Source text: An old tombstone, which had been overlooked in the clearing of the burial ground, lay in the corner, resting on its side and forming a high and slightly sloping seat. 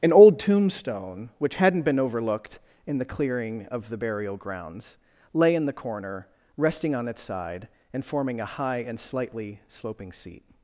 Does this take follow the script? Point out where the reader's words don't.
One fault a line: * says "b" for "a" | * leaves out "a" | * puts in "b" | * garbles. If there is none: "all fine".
* says "hadn't" for "had"
* says "grounds" for "ground"